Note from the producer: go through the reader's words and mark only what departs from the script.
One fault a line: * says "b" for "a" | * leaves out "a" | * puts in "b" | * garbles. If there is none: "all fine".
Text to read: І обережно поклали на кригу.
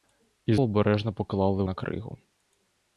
all fine